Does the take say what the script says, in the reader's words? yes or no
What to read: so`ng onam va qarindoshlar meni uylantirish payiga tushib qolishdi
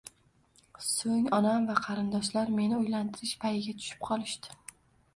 yes